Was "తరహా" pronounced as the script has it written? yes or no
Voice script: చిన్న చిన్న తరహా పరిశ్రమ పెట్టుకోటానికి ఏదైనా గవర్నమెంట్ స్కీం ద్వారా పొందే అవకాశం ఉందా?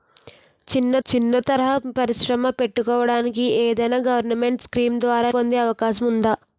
yes